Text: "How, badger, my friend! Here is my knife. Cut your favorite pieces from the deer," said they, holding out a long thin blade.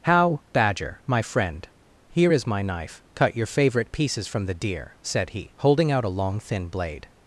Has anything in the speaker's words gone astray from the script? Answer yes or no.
yes